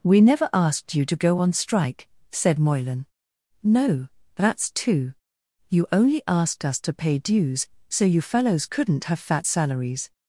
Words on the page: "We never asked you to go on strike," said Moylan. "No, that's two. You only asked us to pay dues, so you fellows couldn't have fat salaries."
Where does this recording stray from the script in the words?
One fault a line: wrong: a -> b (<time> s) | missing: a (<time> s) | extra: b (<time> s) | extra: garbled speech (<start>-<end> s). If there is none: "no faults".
no faults